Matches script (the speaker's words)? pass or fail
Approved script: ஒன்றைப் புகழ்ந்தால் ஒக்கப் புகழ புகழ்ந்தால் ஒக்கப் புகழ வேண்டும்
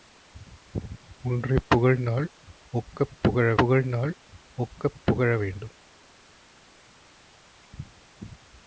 pass